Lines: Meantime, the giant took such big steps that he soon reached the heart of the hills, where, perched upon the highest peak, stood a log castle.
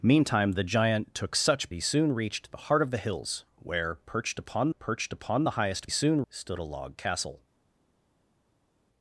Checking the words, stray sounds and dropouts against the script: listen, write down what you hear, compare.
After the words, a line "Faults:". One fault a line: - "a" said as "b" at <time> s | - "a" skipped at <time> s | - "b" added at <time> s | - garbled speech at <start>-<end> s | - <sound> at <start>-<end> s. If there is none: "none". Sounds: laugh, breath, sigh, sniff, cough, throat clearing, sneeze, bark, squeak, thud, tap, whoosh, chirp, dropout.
Meantime, the giant took such he soon reached the heart of the hills, where, perched upon perched upon the highest soon, stood a log castle.
Faults:
- "big steps that" skipped at 1.7 s
- "perched upon" added at 4.7 s
- "peak" said as "soon" at 5.9 s